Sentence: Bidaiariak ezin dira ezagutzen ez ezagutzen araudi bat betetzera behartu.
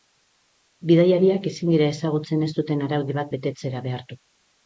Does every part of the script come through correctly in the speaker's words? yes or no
no